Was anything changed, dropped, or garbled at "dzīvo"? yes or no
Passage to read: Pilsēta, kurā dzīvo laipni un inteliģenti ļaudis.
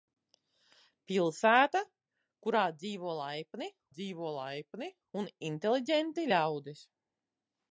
no